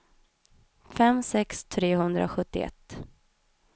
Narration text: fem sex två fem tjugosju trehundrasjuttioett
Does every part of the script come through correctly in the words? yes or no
no